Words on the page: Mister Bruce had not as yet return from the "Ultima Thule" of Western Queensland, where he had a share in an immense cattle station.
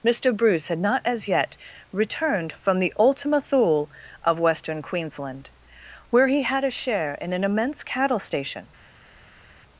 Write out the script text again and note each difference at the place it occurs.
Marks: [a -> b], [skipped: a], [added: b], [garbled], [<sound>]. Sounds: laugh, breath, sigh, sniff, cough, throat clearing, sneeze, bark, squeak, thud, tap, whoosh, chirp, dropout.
Mister Bruce had not as yet [return -> returned] from the "Ultima Thule" of Western Queensland, where he had a share in an immense cattle station.